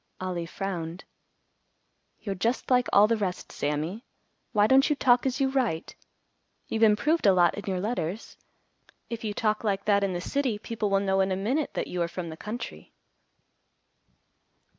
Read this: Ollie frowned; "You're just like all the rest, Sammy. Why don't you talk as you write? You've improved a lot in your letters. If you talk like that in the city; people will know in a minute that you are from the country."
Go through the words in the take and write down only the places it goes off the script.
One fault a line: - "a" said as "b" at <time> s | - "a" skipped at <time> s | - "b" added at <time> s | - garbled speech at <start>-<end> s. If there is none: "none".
none